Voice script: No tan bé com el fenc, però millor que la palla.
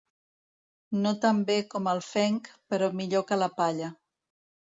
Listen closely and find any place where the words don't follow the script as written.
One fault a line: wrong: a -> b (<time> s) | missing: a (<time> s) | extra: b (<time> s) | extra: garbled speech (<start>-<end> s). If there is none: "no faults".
no faults